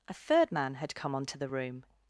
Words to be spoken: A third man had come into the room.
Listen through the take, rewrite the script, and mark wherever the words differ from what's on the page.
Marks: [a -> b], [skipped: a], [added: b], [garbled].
A third man had come [into -> onto] the room.